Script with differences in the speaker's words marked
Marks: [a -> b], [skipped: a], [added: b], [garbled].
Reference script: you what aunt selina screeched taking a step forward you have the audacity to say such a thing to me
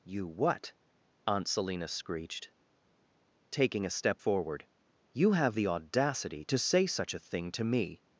you what aunt selina screeched taking a step forward you have the audacity to say such a thing to me